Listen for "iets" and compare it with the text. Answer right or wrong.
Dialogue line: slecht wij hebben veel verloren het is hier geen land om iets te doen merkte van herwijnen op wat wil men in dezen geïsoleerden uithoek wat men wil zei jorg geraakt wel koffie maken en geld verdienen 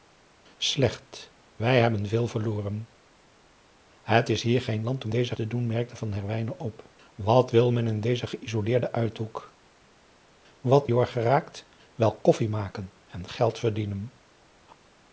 wrong